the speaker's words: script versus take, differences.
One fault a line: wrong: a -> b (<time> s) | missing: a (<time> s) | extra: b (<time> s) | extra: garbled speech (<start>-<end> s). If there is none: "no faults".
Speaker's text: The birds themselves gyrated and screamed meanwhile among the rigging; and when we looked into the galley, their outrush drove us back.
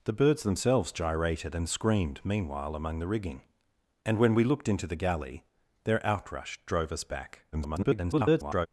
extra: garbled speech (7.5-8.7 s)